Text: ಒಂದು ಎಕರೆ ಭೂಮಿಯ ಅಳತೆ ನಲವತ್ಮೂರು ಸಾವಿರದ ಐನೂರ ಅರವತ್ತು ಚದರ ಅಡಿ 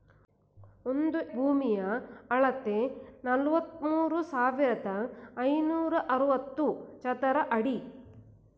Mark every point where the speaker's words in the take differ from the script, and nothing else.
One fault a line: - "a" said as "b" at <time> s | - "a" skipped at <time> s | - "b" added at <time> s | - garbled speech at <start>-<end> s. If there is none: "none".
- "ಎಕರೆ" skipped at 1.2 s